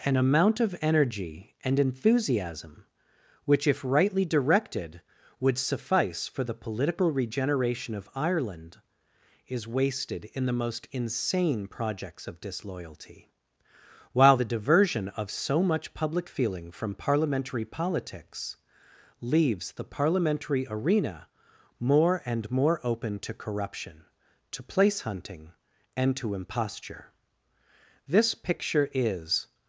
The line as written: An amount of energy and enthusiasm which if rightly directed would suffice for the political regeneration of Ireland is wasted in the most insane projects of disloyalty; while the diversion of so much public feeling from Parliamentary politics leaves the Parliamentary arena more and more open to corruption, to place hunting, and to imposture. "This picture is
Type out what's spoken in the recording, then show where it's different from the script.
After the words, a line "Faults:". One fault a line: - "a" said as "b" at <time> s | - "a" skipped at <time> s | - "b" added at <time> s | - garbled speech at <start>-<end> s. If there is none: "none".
An amount of energy and enthusiasm which if rightly directed would suffice for the political regeneration of Ireland is wasted in the most insane projects of disloyalty; while the diversion of so much public feeling from Parliamentary politics leaves the Parliamentary arena more and more open to corruption, to place hunting, and to imposture. "This picture is
Faults:
none